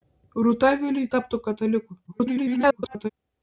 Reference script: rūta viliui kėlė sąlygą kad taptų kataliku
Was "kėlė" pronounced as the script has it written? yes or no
no